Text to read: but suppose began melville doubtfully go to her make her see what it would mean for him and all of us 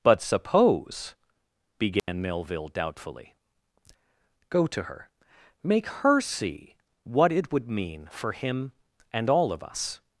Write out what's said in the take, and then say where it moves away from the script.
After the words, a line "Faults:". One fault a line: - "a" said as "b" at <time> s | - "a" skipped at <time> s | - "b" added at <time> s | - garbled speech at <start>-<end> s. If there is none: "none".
but suppose began melville doubtfully go to her make her see what it would mean for him and all of us
Faults:
none